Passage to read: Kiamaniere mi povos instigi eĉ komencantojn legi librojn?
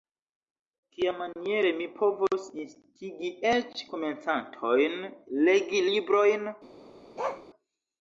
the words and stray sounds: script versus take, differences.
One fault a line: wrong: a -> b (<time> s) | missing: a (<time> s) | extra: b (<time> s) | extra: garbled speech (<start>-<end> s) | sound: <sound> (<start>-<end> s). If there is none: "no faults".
sound: bark (7.2-7.5 s)